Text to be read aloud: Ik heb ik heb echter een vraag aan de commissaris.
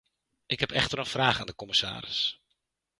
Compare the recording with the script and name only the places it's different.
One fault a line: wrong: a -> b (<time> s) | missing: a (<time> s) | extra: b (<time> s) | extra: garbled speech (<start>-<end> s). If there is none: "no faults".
missing: ik heb (0.7 s)